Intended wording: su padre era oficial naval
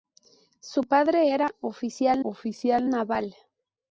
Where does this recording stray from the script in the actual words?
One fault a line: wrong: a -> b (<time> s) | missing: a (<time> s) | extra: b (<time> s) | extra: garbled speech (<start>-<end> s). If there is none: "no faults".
extra: oficial (2.2 s)